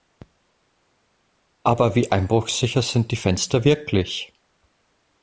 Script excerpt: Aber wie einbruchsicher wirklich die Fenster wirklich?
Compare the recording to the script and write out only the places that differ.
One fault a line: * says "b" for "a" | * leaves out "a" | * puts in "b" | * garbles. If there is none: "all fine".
* says "sind" for "wirklich"